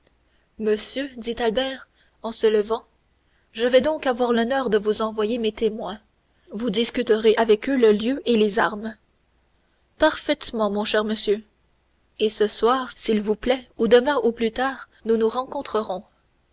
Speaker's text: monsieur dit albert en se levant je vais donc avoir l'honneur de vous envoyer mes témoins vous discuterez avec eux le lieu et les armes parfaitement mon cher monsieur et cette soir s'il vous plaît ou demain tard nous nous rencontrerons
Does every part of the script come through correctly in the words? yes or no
no